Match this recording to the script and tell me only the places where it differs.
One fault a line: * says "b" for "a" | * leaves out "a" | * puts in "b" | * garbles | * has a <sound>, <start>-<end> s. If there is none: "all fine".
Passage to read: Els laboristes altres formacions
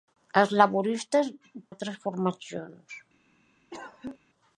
* has a cough, 3.7-4.2 s